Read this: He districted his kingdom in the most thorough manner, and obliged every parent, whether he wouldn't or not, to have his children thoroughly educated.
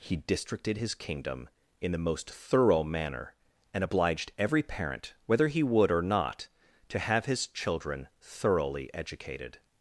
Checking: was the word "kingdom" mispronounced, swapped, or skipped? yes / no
no